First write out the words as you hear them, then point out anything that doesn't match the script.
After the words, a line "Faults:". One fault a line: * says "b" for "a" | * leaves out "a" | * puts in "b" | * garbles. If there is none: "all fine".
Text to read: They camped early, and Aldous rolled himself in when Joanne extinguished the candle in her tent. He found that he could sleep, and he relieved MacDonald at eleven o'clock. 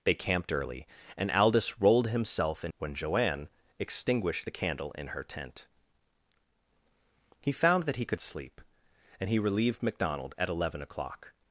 They camped early, and Aldous rolled himself in when Joanne extinguished the candle in her tent. He found that he could sleep, and he relieved MacDonald at eleven o'clock.
Faults:
all fine